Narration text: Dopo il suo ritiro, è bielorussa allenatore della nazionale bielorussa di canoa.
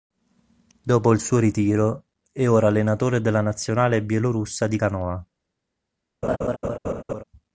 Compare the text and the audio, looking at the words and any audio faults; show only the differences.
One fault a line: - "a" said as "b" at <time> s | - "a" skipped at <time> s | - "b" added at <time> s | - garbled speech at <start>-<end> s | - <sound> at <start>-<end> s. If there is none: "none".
- "bielorussa" said as "ora" at 2.5 s
- laugh at 6.2-7.2 s